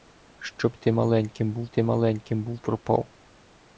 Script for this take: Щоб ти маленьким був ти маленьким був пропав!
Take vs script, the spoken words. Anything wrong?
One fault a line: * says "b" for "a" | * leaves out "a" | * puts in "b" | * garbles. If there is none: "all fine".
all fine